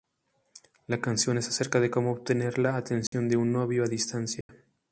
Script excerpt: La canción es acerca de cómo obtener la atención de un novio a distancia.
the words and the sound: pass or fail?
fail